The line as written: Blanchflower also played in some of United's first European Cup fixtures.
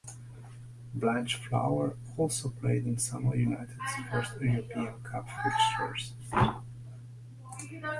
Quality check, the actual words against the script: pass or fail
pass